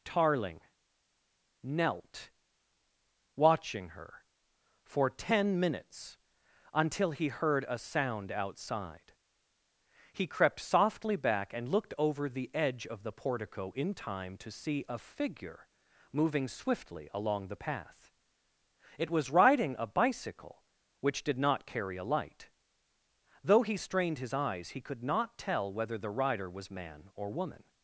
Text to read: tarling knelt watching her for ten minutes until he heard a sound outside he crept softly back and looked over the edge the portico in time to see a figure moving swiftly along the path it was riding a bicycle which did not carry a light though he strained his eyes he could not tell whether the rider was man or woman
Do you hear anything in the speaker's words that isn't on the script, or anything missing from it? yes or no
yes